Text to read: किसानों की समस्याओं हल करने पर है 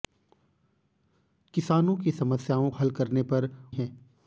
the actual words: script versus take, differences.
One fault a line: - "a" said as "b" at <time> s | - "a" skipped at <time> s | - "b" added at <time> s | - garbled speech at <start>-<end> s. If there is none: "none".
none